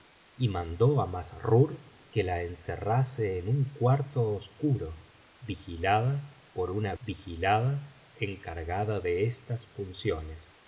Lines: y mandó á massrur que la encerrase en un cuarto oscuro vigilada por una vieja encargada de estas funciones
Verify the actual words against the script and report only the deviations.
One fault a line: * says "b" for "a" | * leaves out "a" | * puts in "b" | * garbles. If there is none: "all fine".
* says "vigilada" for "vieja"